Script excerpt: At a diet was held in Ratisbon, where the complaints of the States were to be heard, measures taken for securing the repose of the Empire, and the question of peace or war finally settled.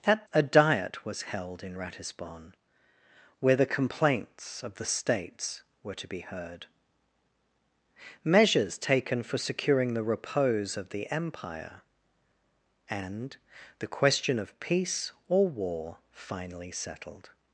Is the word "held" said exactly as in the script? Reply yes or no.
yes